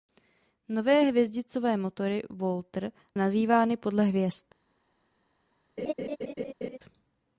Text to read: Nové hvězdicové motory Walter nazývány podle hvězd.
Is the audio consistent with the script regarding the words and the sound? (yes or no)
no